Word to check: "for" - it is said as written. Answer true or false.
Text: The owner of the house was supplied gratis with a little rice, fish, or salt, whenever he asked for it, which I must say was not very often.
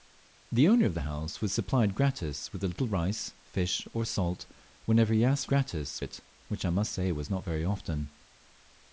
false